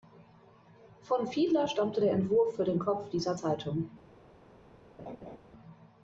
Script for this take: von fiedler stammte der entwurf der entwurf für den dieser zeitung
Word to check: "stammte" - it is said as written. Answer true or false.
true